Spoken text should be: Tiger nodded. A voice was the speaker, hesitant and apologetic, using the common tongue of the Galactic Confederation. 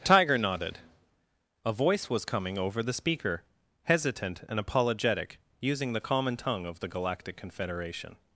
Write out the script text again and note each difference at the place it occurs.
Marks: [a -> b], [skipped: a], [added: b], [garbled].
Tiger nodded. A voice was [added: coming over] the speaker, hesitant and apologetic, using the common tongue of the Galactic Confederation.